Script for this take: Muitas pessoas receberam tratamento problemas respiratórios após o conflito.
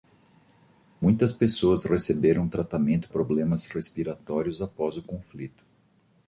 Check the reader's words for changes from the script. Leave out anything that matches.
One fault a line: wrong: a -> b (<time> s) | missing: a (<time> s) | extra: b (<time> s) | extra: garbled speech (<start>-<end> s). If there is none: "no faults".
no faults